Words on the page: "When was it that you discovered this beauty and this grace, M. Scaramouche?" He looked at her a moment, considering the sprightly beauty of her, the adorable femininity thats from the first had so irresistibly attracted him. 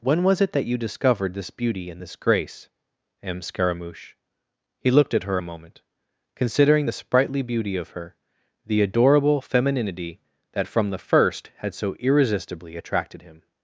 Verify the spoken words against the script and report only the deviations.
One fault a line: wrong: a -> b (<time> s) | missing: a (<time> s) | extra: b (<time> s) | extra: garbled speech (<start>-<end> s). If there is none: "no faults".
wrong: thats -> that (10.5 s)